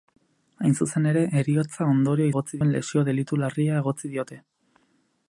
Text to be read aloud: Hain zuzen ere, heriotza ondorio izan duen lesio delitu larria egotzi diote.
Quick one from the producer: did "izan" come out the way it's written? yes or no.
no